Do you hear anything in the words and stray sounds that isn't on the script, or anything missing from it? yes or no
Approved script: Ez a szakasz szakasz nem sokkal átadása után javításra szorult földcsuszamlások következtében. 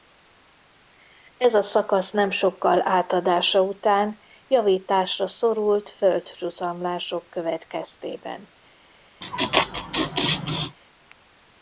yes